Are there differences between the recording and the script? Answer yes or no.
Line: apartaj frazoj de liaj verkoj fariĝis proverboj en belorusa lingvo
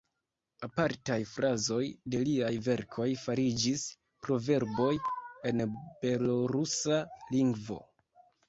no